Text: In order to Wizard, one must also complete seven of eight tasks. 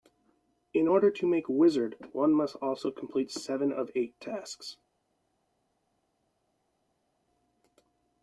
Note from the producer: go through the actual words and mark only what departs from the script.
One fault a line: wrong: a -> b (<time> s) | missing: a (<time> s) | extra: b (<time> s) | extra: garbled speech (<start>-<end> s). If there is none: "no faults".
extra: make (1.3 s)